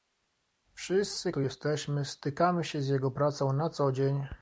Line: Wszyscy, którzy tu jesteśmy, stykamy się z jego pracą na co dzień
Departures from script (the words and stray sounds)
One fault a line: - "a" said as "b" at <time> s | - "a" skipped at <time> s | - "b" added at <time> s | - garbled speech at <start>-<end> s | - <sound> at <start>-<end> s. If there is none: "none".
- "którzy" skipped at 1.3 s